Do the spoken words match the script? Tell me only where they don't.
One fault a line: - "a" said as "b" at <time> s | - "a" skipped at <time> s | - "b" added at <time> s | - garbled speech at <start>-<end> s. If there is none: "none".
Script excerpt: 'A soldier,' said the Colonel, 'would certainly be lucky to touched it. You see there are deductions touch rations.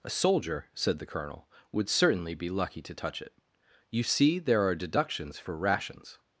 - "touched" said as "touch" at 2.9 s
- "touch" said as "for" at 5.4 s